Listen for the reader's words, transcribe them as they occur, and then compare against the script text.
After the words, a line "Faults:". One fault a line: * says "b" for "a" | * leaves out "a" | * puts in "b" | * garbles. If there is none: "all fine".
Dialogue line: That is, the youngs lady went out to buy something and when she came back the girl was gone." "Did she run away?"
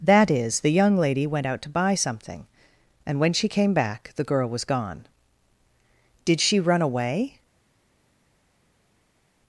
That is, the young lady went out to buy something and when she came back the girl was gone." "Did she run away?"
Faults:
* says "young" for "youngs"